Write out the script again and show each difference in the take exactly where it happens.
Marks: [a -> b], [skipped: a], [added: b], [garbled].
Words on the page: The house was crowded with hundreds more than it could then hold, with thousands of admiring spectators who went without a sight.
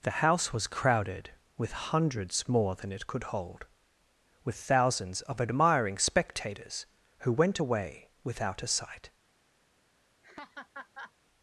The house was crowded with hundreds more than it could [skipped: then] hold, with thousands of admiring spectators who went [added: away] without a sight.